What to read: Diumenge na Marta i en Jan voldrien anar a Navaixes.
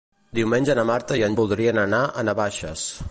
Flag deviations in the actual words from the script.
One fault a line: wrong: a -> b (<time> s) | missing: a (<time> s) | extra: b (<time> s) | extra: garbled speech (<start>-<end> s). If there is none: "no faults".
missing: Jan (1.4 s)